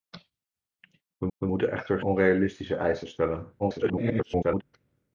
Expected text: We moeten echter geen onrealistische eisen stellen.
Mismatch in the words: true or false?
true